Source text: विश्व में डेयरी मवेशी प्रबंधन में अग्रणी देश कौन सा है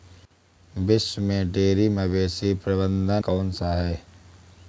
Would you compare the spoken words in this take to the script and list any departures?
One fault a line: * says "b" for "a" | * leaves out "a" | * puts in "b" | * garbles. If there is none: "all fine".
* leaves out "में अग्रणी देश"